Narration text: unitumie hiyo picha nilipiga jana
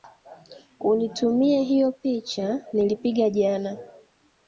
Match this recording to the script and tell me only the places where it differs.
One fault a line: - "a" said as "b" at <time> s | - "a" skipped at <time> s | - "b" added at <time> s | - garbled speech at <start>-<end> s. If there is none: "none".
none